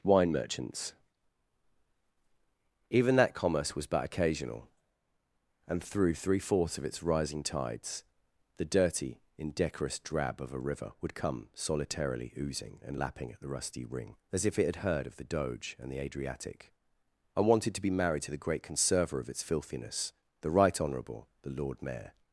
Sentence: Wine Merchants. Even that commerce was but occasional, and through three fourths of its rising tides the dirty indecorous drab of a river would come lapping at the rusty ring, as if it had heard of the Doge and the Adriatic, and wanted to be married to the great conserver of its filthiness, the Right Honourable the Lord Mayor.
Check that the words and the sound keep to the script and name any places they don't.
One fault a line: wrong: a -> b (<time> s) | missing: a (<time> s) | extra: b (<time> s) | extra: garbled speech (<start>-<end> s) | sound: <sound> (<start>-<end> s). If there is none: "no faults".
extra: solitarily oozing and (11.5 s)